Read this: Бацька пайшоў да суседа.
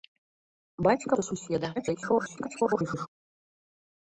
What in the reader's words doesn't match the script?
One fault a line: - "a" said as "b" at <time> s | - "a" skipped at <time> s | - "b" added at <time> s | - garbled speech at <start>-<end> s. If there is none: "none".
- "пайшоў" skipped at 1.1 s
- garbled speech at 1.8-3.1 s